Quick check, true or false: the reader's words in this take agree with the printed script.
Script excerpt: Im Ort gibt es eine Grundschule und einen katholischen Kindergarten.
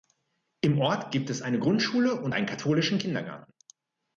true